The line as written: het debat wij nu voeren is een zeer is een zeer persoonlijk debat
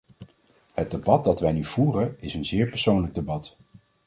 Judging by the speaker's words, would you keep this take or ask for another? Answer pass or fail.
fail